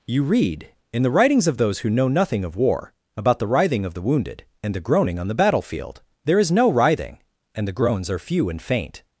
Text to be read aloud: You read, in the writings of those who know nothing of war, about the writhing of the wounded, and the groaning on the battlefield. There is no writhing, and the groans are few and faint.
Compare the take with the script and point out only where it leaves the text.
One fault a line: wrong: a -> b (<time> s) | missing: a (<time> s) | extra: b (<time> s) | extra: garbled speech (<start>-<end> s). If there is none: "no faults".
no faults